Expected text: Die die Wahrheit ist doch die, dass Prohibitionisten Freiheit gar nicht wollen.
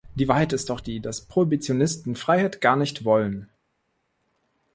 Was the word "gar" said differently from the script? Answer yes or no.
no